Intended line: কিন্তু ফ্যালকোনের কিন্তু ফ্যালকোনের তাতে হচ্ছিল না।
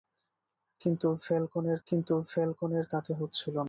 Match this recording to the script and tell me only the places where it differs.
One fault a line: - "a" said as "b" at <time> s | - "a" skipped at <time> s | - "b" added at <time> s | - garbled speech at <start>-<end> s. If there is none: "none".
none